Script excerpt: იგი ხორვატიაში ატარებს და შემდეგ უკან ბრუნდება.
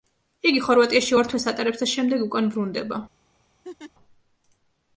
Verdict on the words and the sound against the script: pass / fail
fail